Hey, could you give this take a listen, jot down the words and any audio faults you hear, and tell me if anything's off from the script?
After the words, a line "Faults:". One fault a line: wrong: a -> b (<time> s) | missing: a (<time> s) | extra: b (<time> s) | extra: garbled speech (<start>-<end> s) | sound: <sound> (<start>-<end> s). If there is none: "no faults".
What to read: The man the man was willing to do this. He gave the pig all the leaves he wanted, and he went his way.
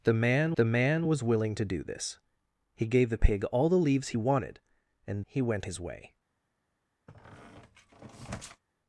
The man the man was willing to do this. He gave the pig all the leaves he wanted, and he went his way.
Faults:
sound: squeak (7.1-8.6 s)